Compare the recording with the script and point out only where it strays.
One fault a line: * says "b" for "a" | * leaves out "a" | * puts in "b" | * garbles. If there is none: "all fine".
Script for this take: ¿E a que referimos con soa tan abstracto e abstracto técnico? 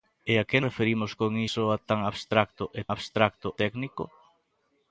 all fine